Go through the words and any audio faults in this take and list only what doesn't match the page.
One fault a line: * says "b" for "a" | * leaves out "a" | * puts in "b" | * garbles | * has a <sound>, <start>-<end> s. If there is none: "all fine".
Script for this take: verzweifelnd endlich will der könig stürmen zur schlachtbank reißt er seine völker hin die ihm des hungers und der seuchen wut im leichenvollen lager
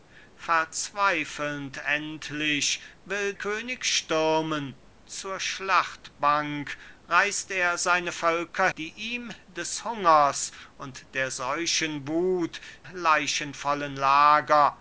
* leaves out "der"
* leaves out "hin"
* leaves out "im"